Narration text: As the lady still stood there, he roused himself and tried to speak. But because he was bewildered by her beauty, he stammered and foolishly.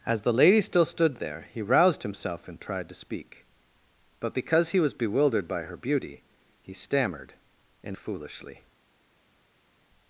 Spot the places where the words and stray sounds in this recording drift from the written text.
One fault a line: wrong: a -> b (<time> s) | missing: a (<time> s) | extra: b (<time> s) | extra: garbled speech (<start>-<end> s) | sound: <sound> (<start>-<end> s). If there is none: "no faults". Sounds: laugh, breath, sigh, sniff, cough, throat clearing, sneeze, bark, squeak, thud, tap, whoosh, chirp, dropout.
no faults